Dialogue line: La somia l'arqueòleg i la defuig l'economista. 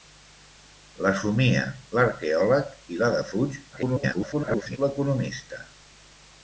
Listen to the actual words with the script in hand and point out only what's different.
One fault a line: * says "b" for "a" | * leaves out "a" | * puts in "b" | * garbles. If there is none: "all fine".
* garbles